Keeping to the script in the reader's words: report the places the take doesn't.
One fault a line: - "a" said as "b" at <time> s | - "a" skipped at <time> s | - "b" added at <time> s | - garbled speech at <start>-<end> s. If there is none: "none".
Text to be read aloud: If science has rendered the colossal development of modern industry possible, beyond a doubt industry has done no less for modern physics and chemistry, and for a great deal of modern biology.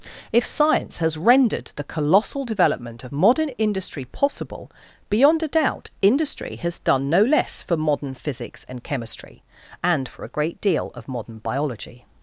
none